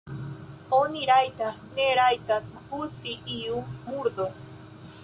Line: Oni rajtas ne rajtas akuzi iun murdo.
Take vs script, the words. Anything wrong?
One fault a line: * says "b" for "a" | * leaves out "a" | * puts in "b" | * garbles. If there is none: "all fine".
all fine